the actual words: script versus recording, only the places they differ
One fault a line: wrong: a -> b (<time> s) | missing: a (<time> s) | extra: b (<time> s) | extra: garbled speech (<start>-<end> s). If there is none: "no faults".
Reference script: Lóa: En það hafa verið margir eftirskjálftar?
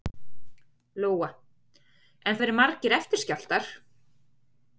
missing: það hafa (2.4 s)